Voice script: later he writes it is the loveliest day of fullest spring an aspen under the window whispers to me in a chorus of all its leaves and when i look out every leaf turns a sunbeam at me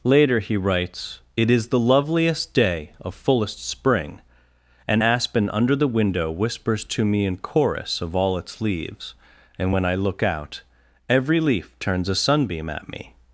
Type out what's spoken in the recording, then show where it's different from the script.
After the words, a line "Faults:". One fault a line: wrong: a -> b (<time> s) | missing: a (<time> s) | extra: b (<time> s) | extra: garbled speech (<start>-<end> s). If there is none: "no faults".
later he writes it is the loveliest day of fullest spring an aspen under the window whispers to me in chorus of all its leaves and when i look out every leaf turns a sunbeam at me
Faults:
missing: a (7.4 s)